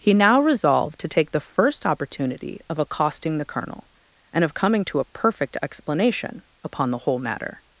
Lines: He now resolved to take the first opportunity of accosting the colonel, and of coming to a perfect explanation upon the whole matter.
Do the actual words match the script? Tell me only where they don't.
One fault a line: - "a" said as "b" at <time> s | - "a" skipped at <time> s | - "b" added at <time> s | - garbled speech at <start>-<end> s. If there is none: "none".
none